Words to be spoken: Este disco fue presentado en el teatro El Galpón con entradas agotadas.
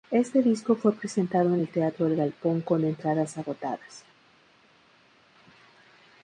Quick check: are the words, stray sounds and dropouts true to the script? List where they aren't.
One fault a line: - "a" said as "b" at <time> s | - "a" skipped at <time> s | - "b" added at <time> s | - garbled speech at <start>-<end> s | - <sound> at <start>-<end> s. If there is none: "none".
none